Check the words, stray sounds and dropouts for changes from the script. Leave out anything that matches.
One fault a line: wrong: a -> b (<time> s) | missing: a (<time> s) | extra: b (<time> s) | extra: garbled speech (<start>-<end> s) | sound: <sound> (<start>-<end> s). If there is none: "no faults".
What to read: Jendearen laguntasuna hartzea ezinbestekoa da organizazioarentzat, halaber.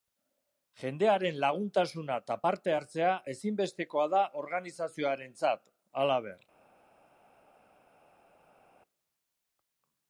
extra: eta parte (2.2 s)